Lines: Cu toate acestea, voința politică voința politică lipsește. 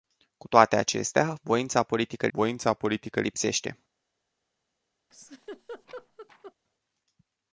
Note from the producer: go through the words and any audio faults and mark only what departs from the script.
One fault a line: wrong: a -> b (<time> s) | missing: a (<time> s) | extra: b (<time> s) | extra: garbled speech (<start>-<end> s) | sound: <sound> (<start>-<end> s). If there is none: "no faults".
sound: laugh (5.1-6.5 s)